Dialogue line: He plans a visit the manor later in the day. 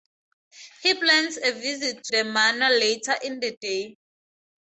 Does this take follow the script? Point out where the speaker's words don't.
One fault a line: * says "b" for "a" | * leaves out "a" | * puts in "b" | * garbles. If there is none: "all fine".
all fine